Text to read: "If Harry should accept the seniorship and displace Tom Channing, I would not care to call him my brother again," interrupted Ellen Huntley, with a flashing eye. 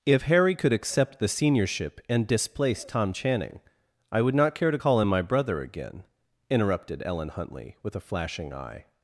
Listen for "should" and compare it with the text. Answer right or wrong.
wrong